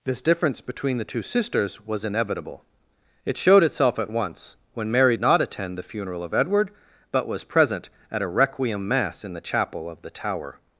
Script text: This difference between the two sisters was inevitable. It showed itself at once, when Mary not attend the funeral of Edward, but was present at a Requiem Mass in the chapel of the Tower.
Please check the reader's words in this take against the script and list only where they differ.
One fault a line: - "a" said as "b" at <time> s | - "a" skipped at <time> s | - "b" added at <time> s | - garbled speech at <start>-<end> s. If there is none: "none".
none